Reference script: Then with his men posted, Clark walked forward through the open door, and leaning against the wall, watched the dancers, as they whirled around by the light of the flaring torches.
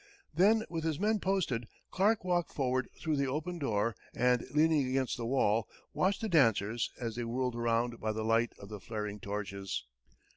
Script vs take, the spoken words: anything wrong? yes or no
no